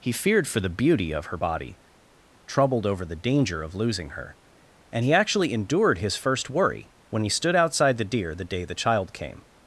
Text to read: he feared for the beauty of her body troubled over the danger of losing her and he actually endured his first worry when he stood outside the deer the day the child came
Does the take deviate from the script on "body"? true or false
false